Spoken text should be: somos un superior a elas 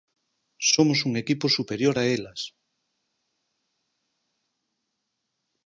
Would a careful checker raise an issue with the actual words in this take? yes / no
yes